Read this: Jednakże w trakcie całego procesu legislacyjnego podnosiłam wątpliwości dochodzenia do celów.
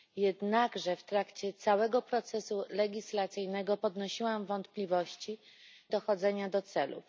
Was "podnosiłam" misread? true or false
false